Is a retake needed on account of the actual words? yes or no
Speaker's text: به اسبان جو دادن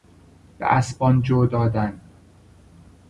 no